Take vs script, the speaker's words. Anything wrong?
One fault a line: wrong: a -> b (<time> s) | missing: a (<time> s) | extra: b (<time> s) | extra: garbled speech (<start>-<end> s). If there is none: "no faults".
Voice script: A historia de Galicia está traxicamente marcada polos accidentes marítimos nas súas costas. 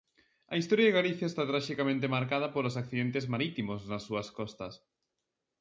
no faults